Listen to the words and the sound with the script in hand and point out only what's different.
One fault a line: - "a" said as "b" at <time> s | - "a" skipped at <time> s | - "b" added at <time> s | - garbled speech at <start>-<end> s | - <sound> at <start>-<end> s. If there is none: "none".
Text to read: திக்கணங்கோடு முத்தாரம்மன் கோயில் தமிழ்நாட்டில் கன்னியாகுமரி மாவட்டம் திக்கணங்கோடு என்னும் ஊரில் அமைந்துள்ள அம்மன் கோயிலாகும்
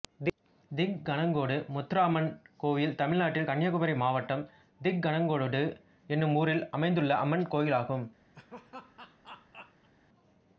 - laugh at 8.3-9.9 s